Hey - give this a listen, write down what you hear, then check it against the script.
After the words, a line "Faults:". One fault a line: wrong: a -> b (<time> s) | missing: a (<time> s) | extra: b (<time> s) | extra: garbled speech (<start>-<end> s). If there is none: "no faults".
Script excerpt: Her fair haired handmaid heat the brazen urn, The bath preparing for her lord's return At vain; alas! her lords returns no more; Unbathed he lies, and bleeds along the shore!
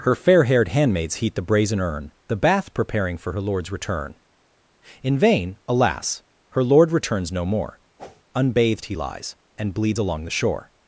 Her fair haired handmaids heat the brazen urn, The bath preparing for her lord's return In vain; alas! her lord returns no more; Unbathed he lies, and bleeds along the shore!
Faults:
wrong: handmaid -> handmaids (0.7 s)
wrong: At -> In (5.0 s)
wrong: lords -> lord (6.6 s)